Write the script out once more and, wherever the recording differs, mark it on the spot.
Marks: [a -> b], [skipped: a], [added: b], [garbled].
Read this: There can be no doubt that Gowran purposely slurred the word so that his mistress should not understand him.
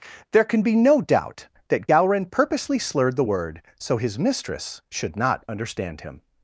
There can be no doubt that Gowran purposely slurred the word so [skipped: that] his mistress should not understand him.